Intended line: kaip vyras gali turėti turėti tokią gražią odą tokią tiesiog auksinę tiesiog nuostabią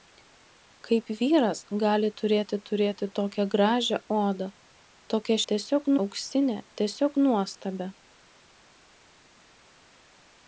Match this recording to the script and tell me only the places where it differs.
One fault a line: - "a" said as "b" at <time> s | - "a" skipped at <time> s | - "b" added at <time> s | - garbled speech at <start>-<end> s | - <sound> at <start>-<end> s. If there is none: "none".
none